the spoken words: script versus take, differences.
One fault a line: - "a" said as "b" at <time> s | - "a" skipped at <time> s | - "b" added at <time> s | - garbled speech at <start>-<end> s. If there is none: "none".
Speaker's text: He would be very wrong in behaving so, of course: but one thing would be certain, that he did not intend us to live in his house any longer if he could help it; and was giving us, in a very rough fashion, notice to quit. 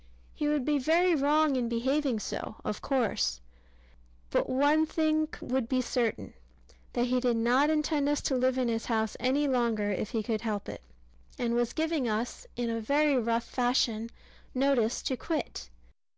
none